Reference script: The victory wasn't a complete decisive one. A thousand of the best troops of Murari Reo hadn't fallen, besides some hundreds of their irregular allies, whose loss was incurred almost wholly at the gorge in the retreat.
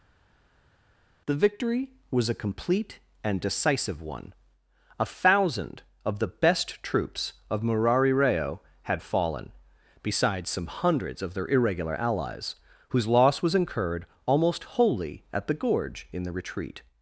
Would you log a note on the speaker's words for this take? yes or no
yes